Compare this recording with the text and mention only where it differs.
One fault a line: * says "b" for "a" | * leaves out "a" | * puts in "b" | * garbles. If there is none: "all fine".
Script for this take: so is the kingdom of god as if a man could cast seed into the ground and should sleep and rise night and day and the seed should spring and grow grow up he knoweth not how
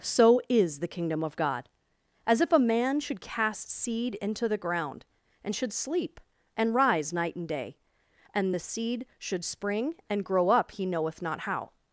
* says "should" for "could"
* leaves out "grow"